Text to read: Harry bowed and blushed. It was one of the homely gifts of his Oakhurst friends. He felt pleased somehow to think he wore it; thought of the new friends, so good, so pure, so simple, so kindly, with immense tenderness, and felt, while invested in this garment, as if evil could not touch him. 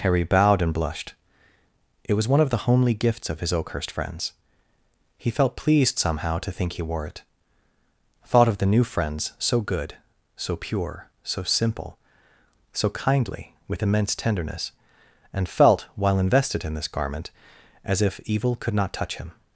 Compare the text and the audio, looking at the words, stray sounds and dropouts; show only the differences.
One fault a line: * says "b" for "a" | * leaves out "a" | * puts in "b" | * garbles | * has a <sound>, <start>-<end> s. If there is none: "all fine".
all fine